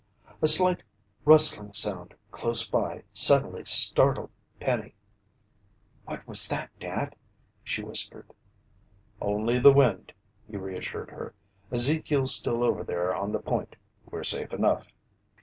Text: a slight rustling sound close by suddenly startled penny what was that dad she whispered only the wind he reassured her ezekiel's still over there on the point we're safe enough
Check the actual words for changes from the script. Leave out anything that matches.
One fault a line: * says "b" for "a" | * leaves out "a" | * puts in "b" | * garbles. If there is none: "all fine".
all fine